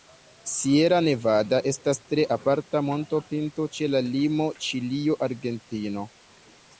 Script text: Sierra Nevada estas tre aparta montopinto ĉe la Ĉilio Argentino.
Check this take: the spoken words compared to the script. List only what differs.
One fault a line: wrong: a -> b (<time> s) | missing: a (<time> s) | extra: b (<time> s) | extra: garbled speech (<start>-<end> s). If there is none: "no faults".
extra: limo (4.1 s)